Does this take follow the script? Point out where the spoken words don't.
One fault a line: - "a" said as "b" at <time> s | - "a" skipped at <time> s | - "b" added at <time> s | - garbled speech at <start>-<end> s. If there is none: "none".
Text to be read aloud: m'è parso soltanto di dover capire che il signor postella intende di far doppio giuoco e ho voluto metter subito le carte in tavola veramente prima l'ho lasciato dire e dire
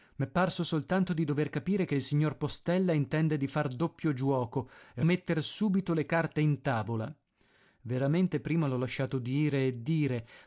- "ho voluto" skipped at 5.0 s